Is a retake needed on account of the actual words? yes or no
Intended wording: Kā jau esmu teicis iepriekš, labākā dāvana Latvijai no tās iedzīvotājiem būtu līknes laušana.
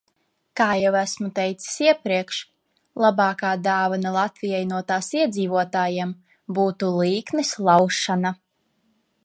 no